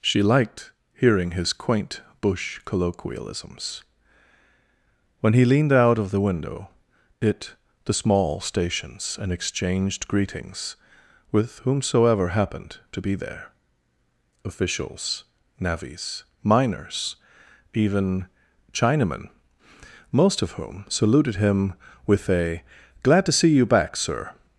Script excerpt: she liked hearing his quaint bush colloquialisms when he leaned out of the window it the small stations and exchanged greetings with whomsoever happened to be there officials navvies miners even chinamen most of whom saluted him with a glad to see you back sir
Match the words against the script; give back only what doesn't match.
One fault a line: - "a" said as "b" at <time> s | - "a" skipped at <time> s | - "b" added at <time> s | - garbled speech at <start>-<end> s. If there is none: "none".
none